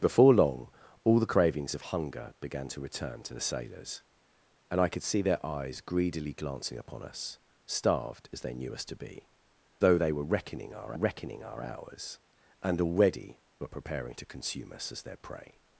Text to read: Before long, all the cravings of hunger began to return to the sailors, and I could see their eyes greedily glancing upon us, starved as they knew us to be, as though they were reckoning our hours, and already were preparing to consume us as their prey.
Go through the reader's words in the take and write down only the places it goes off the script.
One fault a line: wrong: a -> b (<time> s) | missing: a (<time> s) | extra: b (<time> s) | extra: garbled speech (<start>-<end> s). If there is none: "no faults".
missing: as (9.3 s)
extra: reckoning our (10.9 s)